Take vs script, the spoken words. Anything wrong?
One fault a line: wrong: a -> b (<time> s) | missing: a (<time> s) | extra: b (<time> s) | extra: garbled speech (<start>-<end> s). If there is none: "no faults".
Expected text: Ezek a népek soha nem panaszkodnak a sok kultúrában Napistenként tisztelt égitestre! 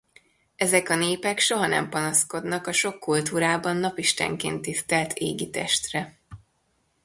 no faults